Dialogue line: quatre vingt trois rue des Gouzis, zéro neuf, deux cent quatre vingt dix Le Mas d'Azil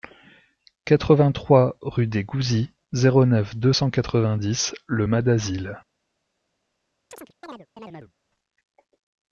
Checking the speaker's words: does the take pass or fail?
pass